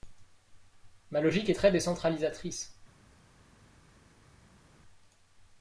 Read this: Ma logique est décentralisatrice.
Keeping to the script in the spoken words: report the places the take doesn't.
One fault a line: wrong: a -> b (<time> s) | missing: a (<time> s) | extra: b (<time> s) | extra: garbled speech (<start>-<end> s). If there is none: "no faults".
extra: très (1.5 s)